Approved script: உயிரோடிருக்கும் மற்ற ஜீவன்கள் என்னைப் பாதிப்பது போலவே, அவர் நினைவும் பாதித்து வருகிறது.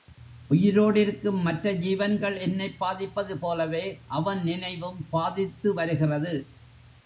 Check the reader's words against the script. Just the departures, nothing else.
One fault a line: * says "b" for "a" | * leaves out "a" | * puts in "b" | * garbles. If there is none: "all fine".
* says "அவன்" for "அவர்"